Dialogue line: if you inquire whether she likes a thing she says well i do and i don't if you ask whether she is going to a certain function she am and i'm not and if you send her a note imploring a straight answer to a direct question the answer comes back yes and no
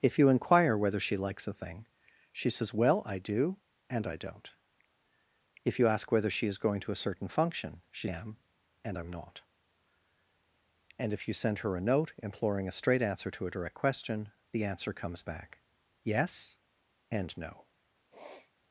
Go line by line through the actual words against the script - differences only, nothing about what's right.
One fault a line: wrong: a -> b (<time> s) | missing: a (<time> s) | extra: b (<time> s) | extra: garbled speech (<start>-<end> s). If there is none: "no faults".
no faults